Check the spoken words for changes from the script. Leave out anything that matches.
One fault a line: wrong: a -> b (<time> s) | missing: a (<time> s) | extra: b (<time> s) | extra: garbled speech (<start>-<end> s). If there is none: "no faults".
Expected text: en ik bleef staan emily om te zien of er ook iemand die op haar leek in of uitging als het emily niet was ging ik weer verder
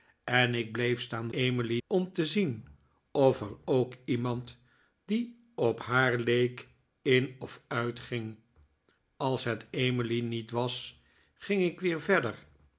no faults